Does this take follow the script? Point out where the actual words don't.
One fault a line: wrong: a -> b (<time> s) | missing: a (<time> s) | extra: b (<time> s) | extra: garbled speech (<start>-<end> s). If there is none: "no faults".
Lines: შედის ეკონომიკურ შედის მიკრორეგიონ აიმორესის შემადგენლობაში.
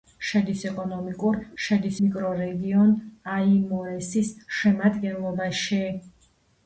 no faults